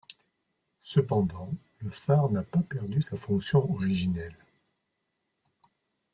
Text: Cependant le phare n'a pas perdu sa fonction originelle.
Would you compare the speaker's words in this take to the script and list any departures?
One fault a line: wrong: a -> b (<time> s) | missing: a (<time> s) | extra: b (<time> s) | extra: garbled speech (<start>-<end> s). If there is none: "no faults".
no faults